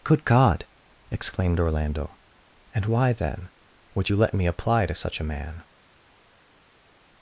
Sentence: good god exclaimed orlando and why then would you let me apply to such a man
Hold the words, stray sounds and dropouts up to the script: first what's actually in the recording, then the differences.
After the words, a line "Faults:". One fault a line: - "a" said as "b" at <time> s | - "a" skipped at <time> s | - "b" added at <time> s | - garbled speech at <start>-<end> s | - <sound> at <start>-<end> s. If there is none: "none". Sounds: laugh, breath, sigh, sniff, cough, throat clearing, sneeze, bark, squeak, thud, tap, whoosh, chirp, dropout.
good god exclaimed orlando and why then would you let me apply to such a man
Faults:
none